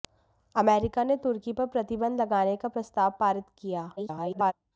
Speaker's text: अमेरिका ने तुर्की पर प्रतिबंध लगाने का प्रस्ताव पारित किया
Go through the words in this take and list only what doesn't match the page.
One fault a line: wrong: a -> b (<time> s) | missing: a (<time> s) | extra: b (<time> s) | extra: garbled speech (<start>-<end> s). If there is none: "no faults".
extra: garbled speech (4.0-4.5 s)